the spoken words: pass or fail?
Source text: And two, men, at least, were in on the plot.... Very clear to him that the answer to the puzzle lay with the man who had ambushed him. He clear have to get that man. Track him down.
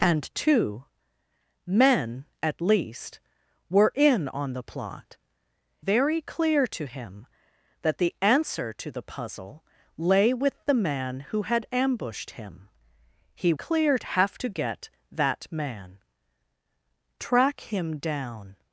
pass